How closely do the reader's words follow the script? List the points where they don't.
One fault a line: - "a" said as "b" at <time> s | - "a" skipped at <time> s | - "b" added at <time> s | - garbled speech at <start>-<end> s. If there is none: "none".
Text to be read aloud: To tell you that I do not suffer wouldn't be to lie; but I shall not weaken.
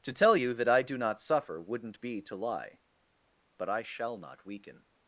none